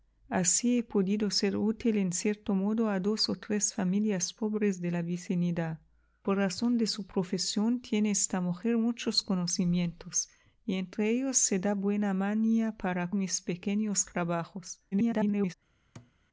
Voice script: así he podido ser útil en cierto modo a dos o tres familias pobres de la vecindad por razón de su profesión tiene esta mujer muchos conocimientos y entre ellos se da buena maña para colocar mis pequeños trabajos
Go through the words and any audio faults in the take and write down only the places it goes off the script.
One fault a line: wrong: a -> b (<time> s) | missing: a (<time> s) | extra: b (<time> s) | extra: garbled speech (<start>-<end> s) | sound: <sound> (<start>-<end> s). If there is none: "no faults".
missing: colocar (13.1 s)
extra: garbled speech (14.9-15.5 s)
sound: thud (16.0-16.1 s)